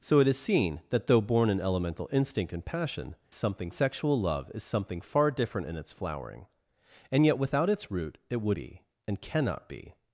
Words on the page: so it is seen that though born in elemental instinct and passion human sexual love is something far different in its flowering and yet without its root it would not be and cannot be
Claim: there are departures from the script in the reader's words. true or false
true